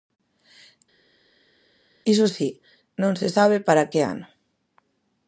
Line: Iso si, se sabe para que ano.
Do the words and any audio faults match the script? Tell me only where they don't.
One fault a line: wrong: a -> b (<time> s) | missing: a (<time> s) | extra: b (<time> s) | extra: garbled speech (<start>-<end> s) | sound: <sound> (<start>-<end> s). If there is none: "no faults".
extra: non (3.0 s)